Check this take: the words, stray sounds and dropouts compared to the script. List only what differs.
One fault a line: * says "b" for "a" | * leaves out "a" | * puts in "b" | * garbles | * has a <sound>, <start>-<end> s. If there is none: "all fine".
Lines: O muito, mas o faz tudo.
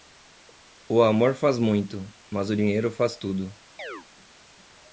* puts in "amor faz"
* puts in "dinheiro"
* has a chirp, 3.8-4.1 s